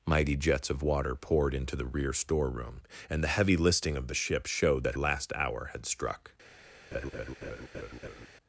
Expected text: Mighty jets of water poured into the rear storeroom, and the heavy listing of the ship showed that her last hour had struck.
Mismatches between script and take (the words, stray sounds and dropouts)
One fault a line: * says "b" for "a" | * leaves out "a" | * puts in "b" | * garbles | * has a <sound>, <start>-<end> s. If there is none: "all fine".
* leaves out "her"
* has a laugh, 6.9-8.3 s